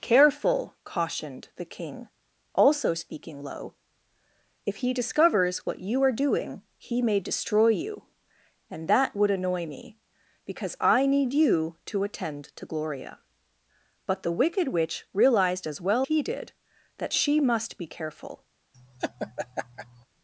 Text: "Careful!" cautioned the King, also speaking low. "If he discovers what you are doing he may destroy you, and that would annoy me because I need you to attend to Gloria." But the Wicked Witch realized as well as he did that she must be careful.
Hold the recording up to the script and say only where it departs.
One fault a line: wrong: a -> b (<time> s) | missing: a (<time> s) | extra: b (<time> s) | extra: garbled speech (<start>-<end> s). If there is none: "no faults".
missing: as (16.1 s)